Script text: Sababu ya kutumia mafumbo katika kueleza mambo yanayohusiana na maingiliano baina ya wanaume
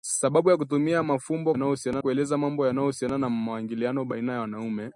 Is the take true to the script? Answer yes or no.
no